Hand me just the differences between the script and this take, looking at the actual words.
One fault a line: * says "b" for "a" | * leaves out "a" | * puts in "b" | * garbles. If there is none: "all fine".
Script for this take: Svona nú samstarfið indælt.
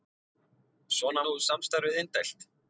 all fine